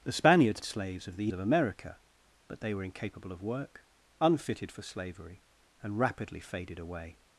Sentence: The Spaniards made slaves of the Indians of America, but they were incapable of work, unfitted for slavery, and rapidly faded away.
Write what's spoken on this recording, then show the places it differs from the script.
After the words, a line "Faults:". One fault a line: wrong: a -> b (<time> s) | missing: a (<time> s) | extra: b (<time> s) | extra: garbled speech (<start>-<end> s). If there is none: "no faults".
The Spaniards slaves of the Of America, but they were incapable of work, unfitted for slavery, and rapidly faded away.
Faults:
missing: made (0.6 s)
missing: Indians (1.3 s)